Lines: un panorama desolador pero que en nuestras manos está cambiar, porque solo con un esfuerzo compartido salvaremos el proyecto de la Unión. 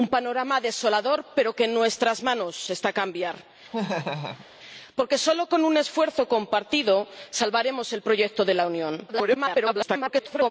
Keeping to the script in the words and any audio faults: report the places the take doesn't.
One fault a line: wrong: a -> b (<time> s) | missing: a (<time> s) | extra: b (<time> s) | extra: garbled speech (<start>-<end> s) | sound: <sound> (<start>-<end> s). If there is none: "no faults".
sound: laugh (3.7-4.5 s)
extra: garbled speech (9.1-10.5 s)